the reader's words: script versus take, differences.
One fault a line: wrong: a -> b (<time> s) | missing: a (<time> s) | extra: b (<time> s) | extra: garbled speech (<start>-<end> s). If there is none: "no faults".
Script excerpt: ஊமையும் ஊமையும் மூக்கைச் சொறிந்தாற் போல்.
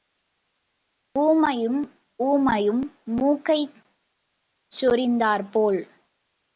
no faults